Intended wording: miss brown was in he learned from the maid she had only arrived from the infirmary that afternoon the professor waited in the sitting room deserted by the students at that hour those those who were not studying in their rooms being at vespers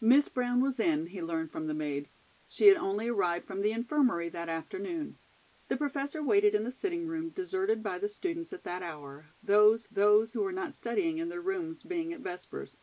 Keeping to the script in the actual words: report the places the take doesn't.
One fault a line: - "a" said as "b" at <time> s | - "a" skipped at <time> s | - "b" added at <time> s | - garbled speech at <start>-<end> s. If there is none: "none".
none